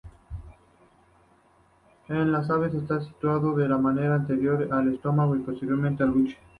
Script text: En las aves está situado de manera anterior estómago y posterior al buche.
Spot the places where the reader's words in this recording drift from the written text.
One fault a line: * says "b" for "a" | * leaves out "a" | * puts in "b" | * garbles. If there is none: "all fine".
* puts in "al"